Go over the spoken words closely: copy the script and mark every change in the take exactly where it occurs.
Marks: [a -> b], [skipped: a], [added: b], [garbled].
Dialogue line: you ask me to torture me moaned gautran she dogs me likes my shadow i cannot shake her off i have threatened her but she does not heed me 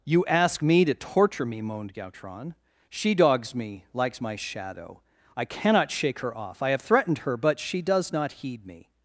you ask me to torture me moaned gautran she dogs me likes my shadow i cannot shake her off i have threatened her but she does not heed me